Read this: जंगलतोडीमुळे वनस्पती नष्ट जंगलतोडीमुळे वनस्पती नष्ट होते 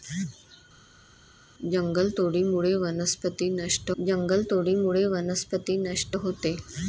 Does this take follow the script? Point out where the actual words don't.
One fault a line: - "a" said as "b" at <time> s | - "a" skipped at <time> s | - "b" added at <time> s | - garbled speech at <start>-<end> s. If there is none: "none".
none